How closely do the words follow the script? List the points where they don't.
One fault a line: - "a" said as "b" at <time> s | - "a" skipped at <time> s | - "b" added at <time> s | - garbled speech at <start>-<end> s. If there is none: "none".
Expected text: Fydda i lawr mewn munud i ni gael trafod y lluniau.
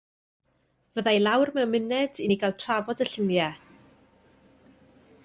none